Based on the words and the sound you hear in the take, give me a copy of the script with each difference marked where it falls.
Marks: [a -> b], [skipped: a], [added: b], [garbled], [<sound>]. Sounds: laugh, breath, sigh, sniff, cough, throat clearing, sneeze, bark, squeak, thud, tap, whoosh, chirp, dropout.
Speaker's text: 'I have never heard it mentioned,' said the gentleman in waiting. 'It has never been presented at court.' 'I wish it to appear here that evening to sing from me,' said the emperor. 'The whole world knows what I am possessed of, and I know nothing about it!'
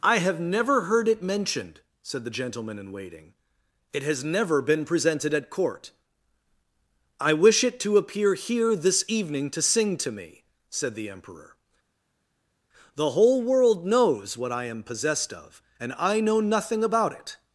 'I have never heard it mentioned,' said the gentleman in waiting. 'It has never been presented at court.' 'I wish it to appear here [that -> this] evening to sing [from -> to] me,' said the emperor. 'The whole world knows what I am possessed of, and I know nothing about it!'